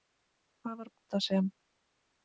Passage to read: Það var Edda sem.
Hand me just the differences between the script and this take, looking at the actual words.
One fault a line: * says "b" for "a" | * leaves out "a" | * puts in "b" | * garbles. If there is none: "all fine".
all fine